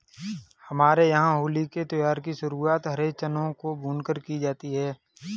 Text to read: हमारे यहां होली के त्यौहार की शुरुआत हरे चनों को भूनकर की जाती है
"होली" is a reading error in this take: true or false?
false